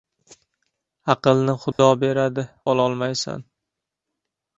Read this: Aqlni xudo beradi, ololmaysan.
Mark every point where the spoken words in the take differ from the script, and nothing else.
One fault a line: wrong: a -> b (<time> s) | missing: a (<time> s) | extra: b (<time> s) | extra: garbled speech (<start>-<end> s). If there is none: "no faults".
no faults